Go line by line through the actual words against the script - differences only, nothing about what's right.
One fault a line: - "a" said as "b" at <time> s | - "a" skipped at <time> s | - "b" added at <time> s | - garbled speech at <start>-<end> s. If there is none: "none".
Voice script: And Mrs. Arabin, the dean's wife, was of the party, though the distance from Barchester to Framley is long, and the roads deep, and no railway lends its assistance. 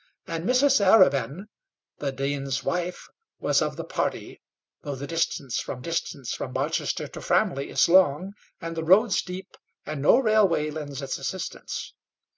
- "distance from" added at 5.8 s